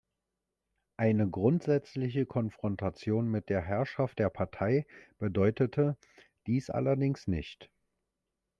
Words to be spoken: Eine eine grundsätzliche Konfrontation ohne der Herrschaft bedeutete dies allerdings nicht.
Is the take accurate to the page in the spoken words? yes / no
no